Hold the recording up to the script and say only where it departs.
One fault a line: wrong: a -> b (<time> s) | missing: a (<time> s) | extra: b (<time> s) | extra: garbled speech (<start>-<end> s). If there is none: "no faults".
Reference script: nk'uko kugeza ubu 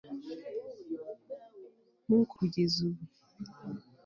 no faults